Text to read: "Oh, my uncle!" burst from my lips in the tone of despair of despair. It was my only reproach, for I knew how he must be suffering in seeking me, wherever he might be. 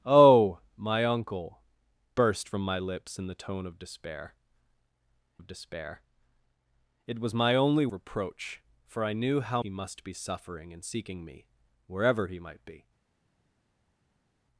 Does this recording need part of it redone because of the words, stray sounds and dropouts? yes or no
no